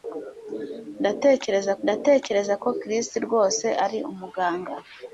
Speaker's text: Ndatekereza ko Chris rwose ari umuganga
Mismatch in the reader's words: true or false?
true